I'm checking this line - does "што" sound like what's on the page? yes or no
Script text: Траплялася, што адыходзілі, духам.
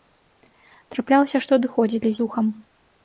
yes